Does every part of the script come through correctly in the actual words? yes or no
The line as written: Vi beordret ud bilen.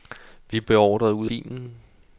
yes